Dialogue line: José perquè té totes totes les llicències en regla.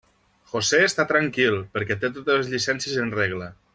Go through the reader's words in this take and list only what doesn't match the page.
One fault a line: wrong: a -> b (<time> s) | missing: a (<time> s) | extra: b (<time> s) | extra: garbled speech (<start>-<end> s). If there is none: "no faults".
extra: està tranquil (0.8 s)
missing: totes (2.4 s)